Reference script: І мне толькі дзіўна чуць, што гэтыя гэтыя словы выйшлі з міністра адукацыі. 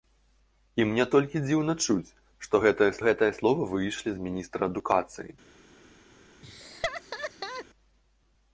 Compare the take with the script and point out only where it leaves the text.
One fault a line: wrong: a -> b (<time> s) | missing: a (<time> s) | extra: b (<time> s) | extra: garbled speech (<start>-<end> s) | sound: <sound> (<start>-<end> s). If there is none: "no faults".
sound: laugh (6.4-7.7 s)